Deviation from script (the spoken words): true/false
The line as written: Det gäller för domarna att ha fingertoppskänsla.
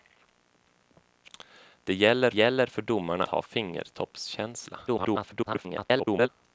true